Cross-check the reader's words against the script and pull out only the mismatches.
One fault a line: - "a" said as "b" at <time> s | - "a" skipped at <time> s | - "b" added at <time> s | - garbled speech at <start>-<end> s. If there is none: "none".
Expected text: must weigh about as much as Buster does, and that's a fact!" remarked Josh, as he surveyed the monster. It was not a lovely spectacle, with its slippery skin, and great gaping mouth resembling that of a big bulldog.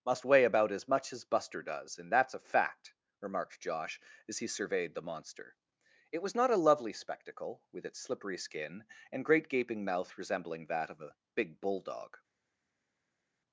none